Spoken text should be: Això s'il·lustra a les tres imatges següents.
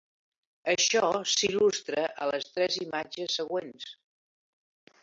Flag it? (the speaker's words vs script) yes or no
no